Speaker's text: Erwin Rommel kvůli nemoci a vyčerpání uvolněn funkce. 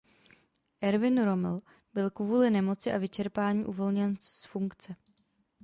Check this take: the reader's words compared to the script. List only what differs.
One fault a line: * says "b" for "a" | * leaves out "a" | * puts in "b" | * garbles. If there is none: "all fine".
* puts in "byl"
* puts in "z"